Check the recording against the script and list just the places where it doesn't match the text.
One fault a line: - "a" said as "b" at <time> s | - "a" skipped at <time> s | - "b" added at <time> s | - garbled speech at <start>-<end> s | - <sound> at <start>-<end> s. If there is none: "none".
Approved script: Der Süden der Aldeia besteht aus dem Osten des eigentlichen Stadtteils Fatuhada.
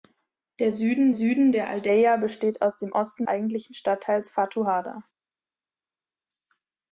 - "Süden" added at 1.1 s
- "des" skipped at 3.3 s